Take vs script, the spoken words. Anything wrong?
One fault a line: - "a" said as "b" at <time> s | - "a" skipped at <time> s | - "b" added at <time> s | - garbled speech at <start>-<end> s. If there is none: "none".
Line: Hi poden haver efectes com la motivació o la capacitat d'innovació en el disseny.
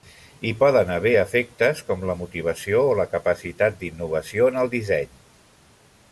none